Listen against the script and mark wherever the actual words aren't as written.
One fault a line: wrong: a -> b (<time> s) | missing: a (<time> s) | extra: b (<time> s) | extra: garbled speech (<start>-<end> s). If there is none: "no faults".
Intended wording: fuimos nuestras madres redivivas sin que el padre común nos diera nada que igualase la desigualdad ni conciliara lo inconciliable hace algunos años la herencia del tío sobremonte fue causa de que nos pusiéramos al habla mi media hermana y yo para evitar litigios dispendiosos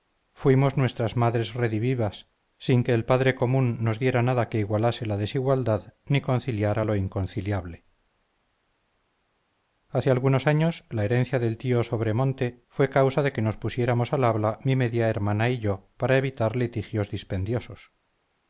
no faults